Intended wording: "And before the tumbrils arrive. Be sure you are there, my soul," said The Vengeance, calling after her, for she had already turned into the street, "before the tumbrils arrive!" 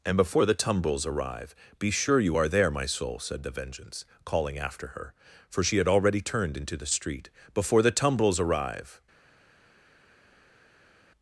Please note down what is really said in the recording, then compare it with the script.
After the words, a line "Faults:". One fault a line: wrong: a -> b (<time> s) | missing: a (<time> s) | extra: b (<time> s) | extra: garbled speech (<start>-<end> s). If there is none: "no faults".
"And before the tumbrils arrive. Be sure you are there, my soul," said The Vengeance, calling after her, for she had already turned into the street, "before the tumbrils arrive!"
Faults:
no faults